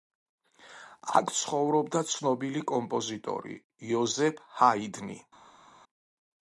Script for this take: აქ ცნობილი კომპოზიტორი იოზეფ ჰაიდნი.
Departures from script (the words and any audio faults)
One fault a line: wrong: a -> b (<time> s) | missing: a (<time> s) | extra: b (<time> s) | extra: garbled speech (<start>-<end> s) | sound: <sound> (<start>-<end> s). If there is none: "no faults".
extra: ცხოვრობდა (1.4 s)